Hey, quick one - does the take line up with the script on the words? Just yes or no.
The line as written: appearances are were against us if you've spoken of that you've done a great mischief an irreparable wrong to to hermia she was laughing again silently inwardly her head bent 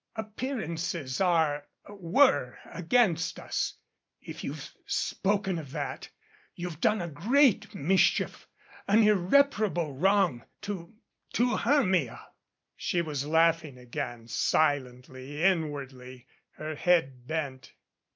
yes